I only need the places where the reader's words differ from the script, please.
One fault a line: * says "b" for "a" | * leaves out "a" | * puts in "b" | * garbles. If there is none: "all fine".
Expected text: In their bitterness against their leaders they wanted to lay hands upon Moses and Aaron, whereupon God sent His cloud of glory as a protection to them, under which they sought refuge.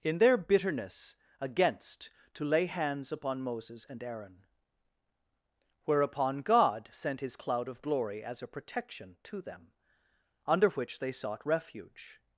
* leaves out "their leaders they wanted"